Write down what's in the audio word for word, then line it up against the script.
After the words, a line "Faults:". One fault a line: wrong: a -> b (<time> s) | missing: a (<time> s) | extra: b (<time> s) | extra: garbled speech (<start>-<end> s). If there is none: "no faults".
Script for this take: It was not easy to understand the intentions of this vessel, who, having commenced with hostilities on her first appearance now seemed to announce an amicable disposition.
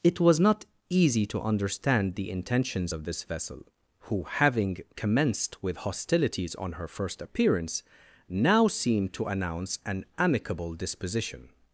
It was not easy to understand the intentions of this vessel, who, having commenced with hostilities on her first appearance now seemed to announce an amicable disposition.
Faults:
no faults